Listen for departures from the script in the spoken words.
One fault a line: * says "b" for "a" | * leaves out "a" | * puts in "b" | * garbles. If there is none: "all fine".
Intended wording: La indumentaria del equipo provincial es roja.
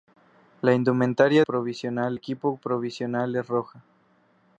* says "provincial" for "del"